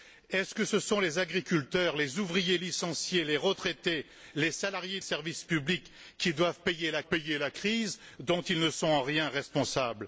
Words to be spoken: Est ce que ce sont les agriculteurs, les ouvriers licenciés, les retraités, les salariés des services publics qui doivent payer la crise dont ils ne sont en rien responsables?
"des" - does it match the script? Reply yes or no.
no